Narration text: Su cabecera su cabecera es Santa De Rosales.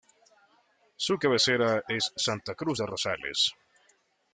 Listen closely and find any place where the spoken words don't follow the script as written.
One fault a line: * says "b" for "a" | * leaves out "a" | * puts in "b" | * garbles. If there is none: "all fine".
* leaves out "su cabecera"
* puts in "Cruz"